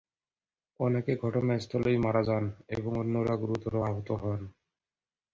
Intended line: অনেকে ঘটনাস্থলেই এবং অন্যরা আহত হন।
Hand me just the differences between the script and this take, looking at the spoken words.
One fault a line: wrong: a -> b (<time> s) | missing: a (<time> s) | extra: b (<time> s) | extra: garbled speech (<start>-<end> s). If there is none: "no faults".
extra: মারা যান (2.0 s)
extra: গুরুতর (3.4 s)